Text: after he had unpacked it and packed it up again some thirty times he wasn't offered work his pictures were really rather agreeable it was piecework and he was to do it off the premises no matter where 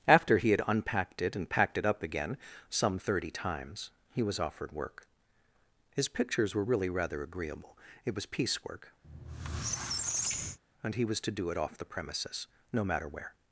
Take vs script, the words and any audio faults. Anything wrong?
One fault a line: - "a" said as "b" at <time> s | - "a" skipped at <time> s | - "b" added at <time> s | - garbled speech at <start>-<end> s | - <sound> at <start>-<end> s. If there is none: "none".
- "wasn't" said as "was" at 4.2 s
- squeak at 9.0-10.6 s